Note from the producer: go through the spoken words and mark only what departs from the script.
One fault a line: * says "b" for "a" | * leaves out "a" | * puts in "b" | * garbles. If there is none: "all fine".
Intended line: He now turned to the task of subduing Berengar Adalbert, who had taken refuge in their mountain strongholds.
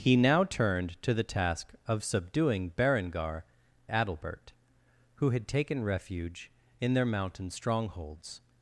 all fine